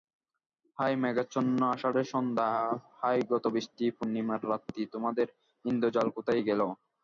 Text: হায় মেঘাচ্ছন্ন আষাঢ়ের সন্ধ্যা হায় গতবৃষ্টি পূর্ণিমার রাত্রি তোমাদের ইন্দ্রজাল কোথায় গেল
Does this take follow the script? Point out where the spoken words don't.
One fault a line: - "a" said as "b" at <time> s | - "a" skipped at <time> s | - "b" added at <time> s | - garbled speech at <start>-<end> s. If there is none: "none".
none